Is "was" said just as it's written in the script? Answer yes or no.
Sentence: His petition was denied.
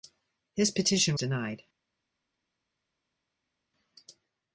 no